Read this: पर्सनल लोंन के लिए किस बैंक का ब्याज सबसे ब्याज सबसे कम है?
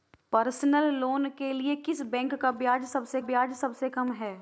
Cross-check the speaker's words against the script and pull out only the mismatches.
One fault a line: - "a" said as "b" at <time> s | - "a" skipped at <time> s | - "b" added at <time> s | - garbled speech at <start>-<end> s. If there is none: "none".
none